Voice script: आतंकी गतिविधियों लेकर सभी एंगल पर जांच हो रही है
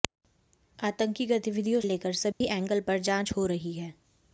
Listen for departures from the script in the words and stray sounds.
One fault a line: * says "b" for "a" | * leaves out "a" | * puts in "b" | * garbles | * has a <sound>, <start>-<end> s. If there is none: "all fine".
* has a dropout, 2.3-2.4 s